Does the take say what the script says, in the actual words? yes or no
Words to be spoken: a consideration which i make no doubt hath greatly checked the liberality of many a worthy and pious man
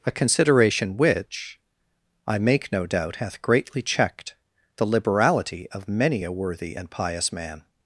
yes